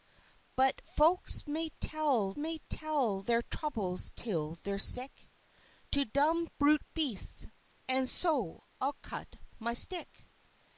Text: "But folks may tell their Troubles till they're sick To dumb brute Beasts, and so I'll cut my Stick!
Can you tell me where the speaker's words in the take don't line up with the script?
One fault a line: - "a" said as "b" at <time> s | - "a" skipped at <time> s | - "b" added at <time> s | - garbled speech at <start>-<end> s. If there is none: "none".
- "may tell" added at 2.4 s